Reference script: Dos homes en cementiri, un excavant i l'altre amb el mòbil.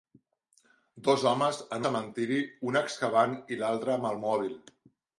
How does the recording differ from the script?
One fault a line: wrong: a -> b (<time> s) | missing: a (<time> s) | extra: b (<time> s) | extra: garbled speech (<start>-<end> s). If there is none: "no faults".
no faults